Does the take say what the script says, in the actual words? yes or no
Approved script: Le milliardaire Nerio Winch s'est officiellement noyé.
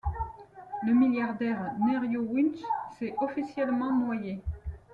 yes